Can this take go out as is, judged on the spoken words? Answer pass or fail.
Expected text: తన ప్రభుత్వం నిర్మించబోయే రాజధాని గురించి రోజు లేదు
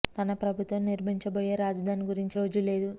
pass